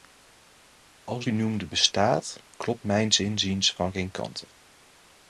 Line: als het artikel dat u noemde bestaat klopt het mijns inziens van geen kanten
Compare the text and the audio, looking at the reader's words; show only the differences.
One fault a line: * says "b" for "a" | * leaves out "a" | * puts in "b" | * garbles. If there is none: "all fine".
* leaves out "het artikel dat"
* leaves out "het"